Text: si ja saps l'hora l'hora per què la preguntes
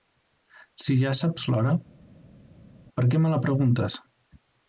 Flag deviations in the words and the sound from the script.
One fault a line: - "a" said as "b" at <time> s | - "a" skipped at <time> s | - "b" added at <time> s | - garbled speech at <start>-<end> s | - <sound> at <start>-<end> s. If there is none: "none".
- "l'hora" skipped at 1.8 s
- "me" added at 3.2 s